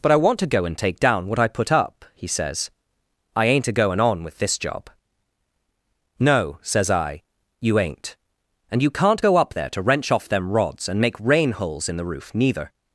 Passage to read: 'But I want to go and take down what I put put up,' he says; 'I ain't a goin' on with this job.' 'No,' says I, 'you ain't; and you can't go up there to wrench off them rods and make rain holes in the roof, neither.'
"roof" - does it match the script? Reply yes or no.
yes